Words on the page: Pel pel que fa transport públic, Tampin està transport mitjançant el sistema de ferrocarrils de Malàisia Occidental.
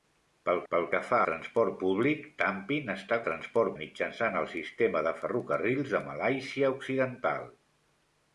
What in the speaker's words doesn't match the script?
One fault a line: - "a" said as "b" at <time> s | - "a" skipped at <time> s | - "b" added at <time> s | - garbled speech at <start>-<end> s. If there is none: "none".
none